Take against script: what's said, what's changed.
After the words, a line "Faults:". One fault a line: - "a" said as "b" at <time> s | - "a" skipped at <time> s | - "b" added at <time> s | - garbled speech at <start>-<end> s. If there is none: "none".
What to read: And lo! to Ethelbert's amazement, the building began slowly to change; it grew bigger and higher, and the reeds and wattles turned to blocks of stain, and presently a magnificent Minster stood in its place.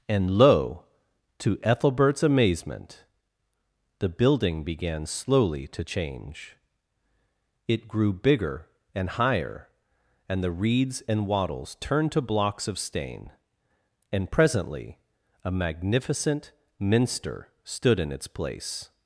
And lo! to Ethelbert's amazement, the building began slowly to change; it grew bigger and higher, and the reeds and wattles turned to blocks of stain, and presently a magnificent Minster stood in its place.
Faults:
none